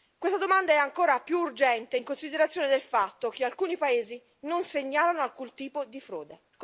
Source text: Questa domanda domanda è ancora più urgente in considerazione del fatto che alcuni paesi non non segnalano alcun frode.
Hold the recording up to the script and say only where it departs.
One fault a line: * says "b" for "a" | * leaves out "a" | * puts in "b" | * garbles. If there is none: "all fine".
* leaves out "domanda"
* leaves out "non"
* puts in "tipo di"